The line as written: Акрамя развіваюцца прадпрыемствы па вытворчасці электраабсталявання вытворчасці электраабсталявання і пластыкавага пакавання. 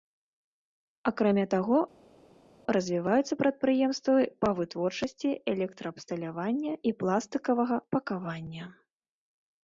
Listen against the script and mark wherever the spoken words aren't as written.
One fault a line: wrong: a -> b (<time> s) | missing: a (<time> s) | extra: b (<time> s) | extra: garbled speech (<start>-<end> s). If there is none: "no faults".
extra: таго (1.5 s)
missing: вытворчасці электраабсталявання (6.7 s)